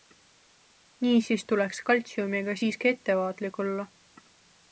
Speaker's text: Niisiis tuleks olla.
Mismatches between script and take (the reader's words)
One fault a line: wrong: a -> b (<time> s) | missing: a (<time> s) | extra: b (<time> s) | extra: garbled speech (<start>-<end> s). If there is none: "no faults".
extra: kaltsiumiga siiski ettevaatlik (1.9 s)